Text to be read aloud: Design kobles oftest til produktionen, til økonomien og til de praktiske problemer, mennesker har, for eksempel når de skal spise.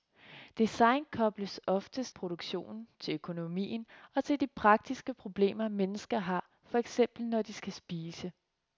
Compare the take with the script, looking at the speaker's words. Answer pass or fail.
fail